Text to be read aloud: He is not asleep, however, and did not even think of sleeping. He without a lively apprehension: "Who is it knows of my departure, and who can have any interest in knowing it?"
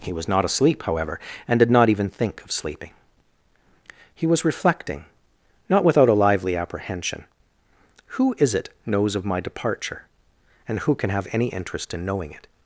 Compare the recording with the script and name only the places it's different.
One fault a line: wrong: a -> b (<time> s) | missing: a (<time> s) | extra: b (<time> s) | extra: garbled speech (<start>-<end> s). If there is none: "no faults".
wrong: is -> was (0.1 s)
extra: was reflecting not (4.2 s)